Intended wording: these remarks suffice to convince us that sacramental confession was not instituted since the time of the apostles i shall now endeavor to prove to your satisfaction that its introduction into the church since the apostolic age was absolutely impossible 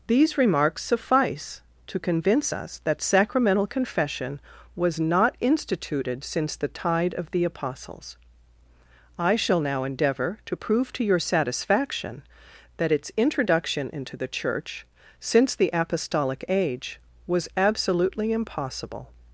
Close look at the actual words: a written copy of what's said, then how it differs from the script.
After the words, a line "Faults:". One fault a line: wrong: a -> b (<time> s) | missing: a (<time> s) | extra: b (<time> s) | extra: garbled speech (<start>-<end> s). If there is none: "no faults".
these remarks suffice to convince us that sacramental confession was not instituted since the tide of the apostles i shall now endeavor to prove to your satisfaction that its introduction into the church since the apostolic age was absolutely impossible
Faults:
wrong: time -> tide (6.7 s)